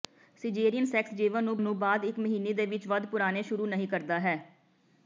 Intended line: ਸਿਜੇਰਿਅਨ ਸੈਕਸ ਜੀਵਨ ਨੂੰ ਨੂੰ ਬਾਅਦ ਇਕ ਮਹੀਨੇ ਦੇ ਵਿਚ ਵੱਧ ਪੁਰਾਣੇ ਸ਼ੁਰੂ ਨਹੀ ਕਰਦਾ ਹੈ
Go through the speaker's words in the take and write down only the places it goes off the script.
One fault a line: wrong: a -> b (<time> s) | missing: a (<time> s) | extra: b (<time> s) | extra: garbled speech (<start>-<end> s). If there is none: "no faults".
no faults